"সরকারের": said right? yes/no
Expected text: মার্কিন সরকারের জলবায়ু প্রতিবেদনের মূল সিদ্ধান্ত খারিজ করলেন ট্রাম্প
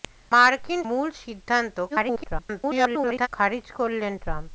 no